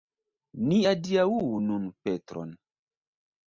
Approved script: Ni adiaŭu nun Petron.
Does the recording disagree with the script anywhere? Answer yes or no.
no